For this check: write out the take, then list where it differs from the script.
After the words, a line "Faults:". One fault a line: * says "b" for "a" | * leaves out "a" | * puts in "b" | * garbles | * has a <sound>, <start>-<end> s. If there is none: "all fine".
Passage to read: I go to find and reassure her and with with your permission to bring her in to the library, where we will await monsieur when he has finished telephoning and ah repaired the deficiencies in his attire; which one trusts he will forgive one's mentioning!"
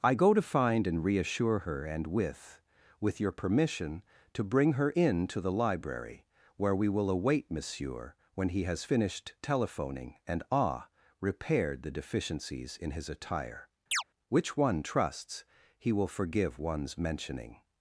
I go to find and reassure her and with with your permission to bring her in to the library, where we will await monsieur when he has finished telephoning and ah repaired the deficiencies in his attire; which one trusts he will forgive one's mentioning!"
Faults:
* has a chirp, 13.9-14.0 s